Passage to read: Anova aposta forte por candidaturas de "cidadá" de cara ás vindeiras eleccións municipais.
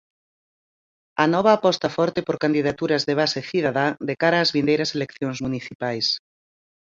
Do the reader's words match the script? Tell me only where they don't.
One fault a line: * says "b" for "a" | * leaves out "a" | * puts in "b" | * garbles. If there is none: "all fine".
* puts in "base"